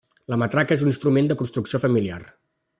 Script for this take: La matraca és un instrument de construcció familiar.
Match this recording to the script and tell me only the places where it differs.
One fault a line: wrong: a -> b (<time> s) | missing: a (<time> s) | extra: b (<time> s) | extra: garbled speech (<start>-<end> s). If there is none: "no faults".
no faults